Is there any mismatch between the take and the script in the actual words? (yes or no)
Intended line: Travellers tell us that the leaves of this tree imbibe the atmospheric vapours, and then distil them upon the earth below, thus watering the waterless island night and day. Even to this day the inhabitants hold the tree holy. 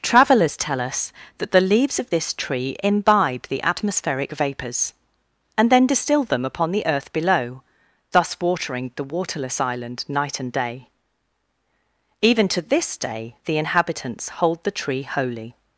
no